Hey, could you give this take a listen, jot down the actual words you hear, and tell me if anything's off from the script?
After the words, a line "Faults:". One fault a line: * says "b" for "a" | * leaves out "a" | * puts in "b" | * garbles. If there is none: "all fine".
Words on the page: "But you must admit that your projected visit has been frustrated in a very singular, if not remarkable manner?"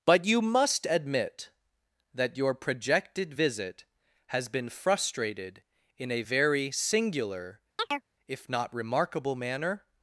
"But you must admit that your projected visit has been frustrated in a very singular, if not remarkable manner?"
Faults:
all fine